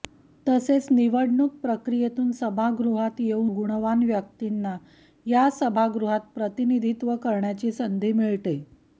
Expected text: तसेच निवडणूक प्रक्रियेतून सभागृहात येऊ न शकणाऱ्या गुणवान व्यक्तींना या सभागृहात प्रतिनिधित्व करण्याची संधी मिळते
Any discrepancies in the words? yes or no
yes